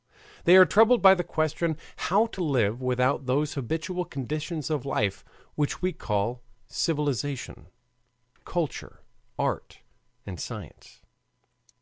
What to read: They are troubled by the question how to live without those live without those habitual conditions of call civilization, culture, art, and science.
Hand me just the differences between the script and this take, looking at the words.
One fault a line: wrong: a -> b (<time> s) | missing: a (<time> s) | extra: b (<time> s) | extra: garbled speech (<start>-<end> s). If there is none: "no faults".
wrong: live without those habitual conditions of -> habitual conditions of life which we (3.5 s)